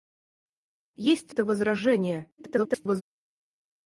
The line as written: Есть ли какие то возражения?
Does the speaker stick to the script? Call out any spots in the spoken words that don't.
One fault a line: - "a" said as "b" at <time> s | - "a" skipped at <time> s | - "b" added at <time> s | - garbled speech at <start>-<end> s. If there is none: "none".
- "ли какие" skipped at 1.3 s
- garbled speech at 2.4-3.0 s